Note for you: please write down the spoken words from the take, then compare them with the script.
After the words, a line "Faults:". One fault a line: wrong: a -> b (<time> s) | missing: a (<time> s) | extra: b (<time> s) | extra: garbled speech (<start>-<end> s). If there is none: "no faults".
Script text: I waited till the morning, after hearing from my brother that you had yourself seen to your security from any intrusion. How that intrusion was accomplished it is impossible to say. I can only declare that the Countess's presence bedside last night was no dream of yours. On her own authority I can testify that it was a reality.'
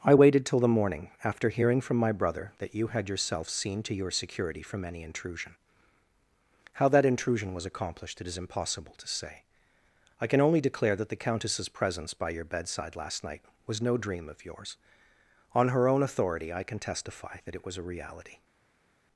I waited till the morning, after hearing from my brother that you had yourself seen to your security from any intrusion. How that intrusion was accomplished it is impossible to say. I can only declare that the Countess's presence by your bedside last night was no dream of yours. On her own authority I can testify that it was a reality.'
Faults:
extra: by your (12.1 s)